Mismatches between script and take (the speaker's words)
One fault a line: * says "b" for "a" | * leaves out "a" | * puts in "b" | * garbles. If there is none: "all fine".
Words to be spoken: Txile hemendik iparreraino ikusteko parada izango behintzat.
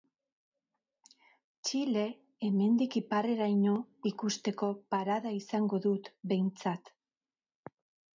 * puts in "dut"